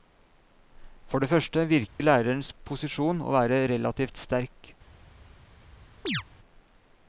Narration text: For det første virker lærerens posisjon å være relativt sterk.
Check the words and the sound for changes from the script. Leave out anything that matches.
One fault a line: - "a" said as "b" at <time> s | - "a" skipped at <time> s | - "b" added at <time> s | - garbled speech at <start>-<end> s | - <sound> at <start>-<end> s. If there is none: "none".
- dropout at 1.9-2.0 s
- chirp at 6.0-6.2 s